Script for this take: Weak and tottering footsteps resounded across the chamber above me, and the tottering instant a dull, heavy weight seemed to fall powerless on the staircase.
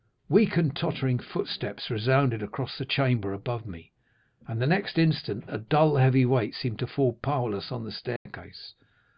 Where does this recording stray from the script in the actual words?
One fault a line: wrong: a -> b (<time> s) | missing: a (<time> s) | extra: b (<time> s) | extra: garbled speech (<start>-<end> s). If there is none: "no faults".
wrong: tottering -> next (4.7 s)